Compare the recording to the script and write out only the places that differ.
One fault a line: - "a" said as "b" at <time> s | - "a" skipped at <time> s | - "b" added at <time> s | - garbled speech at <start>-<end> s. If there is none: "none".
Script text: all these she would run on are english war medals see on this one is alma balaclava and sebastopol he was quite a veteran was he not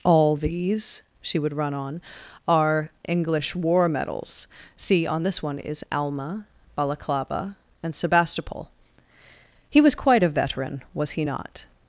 none